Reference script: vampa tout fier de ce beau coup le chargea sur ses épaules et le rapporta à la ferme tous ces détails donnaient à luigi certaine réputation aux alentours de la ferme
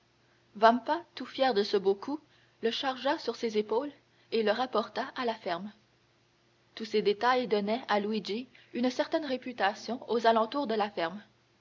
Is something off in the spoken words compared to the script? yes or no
yes